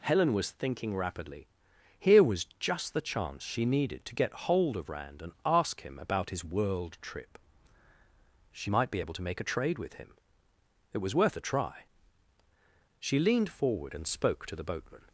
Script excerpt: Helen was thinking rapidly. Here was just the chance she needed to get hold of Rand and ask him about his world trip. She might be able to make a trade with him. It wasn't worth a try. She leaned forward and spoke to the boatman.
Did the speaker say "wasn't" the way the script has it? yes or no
no